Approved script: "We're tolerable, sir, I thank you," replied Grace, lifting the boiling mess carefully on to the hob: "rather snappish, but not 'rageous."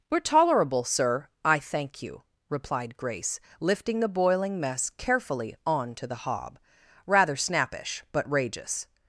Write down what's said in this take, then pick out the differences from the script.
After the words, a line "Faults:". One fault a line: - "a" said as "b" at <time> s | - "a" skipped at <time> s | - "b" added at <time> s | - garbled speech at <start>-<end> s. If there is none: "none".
"We're tolerable, sir, I thank you," replied Grace, lifting the boiling mess carefully on to the hob: "rather snappish, but 'rageous."
Faults:
- "not" skipped at 8.3 s